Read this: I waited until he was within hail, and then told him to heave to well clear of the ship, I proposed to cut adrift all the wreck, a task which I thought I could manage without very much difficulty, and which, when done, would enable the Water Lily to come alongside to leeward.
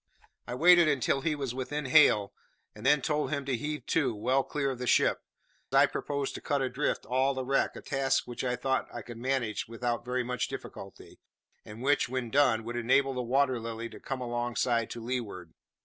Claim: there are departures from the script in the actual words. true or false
false